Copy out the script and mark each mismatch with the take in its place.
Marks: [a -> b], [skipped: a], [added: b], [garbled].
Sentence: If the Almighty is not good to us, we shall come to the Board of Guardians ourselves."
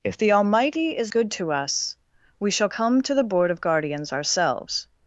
If the Almighty is [skipped: not] good to us, we shall come to the Board of Guardians ourselves."